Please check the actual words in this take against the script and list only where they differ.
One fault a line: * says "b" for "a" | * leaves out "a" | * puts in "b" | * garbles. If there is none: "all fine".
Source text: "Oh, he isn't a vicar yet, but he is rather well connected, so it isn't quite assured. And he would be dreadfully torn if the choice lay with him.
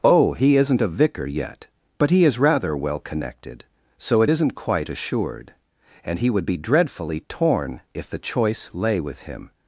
all fine